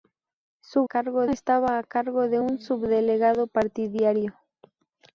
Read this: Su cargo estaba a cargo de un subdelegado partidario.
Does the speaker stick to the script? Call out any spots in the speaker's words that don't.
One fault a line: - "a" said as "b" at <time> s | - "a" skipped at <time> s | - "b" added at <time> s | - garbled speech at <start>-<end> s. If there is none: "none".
none